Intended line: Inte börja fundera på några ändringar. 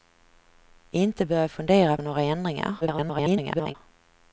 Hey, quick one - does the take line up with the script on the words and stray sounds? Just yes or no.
no